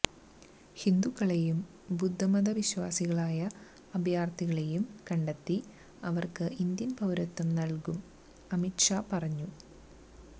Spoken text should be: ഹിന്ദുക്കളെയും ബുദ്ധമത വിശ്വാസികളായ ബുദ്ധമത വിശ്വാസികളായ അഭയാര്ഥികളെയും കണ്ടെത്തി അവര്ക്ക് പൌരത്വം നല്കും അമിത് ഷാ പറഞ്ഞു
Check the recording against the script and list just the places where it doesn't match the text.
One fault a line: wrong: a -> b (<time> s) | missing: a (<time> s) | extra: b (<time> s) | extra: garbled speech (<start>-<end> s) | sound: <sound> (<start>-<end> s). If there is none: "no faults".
missing: ബുദ്ധമത വിശ്വാസികളായ (3.4 s)
extra: ഇന്ത്യന് (6.6 s)